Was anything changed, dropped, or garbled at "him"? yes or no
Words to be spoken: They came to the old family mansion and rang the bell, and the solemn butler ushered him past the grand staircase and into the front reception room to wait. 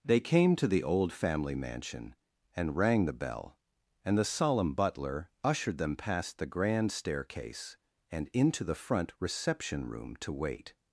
yes